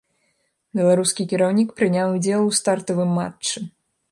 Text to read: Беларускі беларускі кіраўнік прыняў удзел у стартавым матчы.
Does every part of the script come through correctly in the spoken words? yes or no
no